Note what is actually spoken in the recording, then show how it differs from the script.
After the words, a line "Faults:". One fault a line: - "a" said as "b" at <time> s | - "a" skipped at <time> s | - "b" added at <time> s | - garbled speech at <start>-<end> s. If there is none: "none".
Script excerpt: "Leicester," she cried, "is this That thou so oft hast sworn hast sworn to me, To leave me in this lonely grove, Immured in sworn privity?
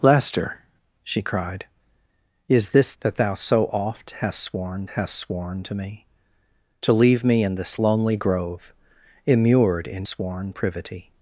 "Leicester," she cried, "is this That thou so oft hast sworn hast sworn to me, To leave me in this lonely grove, Immured in sworn privity?
Faults:
none